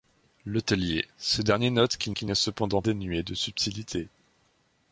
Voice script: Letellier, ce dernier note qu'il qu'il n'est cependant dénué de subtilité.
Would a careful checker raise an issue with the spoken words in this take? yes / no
no